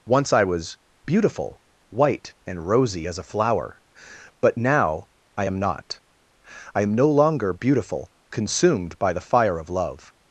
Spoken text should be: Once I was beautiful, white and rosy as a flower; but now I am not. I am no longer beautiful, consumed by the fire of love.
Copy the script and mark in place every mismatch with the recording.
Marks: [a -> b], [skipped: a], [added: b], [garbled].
Once I was beautiful, white and rosy as a flower; but now I am not. I am no longer beautiful, consumed by the fire of love.